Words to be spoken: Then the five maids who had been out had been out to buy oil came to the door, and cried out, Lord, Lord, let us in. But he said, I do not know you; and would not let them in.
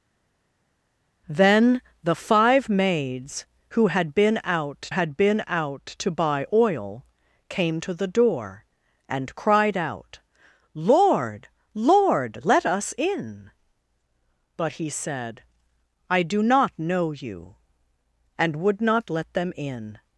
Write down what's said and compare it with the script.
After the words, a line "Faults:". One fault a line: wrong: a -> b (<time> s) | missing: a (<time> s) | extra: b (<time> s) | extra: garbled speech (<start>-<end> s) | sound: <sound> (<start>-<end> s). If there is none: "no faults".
Then the five maids who had been out had been out to buy oil came to the door, and cried out, Lord, Lord, let us in. But he said, I do not know you; and would not let them in.
Faults:
no faults